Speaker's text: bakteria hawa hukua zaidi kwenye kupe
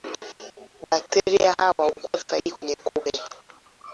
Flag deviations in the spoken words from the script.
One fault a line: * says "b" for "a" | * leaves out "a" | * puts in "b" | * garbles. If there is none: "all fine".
all fine